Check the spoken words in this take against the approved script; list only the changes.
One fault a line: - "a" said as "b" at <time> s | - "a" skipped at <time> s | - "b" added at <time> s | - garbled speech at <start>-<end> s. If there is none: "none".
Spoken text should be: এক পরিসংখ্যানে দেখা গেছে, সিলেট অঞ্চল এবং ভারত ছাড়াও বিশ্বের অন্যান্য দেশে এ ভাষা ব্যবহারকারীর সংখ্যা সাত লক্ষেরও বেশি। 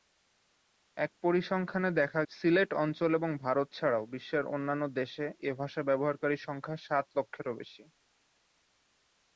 - "গেছে" skipped at 2.2 s